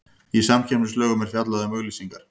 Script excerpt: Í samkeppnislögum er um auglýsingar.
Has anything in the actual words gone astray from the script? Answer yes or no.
yes